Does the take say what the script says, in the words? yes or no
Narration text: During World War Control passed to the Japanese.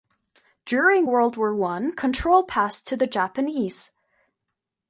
no